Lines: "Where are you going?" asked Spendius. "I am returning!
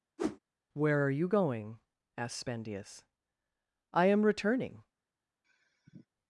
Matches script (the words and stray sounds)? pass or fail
fail